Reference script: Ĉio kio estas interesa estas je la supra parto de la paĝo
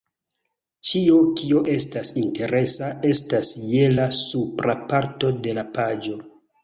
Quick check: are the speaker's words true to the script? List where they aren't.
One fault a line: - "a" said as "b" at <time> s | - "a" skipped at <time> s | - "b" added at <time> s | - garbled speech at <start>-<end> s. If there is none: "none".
none